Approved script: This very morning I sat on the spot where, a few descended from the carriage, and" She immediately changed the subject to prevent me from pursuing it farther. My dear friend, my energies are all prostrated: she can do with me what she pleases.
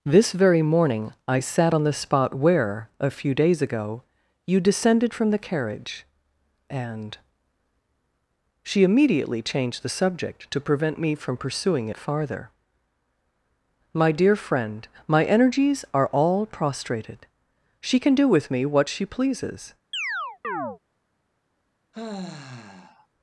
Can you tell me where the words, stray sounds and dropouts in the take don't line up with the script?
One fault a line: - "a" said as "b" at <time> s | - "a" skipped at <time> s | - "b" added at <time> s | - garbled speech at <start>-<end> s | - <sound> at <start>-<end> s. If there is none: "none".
- "days ago you" added at 3.3 s
- chirp at 19.9-20.8 s
- sigh at 21.9-23.1 s